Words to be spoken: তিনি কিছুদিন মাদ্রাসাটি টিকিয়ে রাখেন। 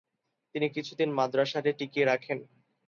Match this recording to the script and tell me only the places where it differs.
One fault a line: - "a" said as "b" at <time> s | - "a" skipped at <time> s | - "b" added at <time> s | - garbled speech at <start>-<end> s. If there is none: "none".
none